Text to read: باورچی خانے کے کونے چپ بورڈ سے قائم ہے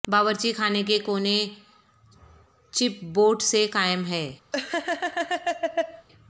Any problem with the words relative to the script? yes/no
no